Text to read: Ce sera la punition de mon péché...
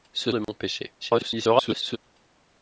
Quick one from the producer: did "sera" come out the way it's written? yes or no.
no